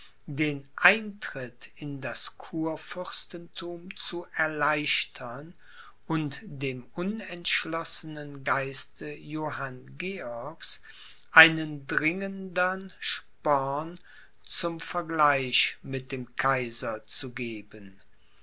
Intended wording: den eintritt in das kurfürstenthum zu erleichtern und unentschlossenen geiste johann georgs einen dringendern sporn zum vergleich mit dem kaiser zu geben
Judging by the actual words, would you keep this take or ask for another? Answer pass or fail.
fail